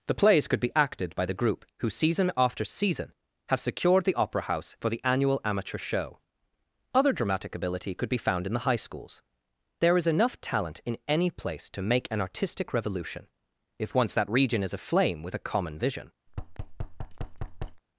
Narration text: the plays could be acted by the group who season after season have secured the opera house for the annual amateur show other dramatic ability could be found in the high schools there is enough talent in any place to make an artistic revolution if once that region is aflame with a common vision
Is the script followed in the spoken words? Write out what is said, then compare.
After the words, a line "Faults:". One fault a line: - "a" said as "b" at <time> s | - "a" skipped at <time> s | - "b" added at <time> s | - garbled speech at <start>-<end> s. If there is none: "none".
the plays could be acted by the group who season after season have secured the opera house for the annual amateur show other dramatic ability could be found in the high schools there is enough talent in any place to make an artistic revolution if once that region is aflame with a common vision
Faults:
none